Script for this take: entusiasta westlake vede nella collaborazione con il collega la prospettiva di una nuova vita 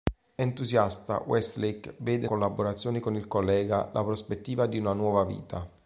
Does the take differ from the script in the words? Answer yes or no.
yes